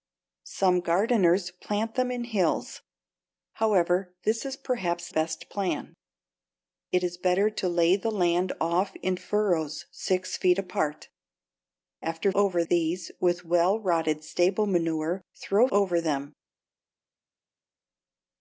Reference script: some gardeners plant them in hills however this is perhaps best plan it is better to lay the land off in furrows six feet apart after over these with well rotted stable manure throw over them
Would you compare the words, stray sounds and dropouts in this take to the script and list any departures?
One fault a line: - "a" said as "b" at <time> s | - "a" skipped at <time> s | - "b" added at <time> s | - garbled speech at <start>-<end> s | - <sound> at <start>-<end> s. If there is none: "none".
none